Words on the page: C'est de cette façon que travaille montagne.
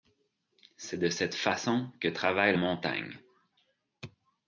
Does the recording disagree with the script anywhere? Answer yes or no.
no